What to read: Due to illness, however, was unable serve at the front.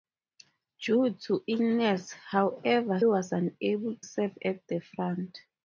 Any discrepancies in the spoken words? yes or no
no